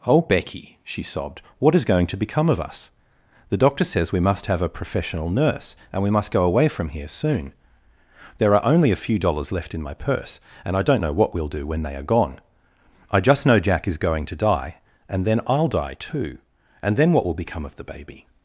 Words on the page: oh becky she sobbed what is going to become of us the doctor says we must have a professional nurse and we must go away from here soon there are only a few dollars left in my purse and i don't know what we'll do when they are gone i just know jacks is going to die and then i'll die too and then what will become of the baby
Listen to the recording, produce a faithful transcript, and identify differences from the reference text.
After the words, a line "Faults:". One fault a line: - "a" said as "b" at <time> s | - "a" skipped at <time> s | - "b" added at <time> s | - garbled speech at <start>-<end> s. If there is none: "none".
oh becky she sobbed what is going to become of us the doctor says we must have a professional nurse and we must go away from here soon there are only a few dollars left in my purse and i don't know what we'll do when they are gone i just know jack is going to die and then i'll die too and then what will become of the baby
Faults:
- "jacks" said as "jack" at 13.6 s